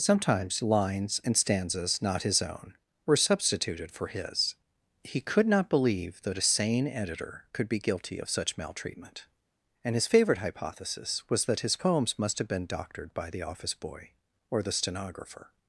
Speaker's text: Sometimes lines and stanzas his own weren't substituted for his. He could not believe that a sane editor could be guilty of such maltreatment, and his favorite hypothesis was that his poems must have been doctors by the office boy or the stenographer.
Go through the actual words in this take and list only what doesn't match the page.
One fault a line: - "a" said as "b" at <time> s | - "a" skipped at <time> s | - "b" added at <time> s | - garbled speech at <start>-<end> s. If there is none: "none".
- "not" added at 2.0 s
- "weren't" said as "were" at 3.1 s
- "doctors" said as "doctored" at 12.7 s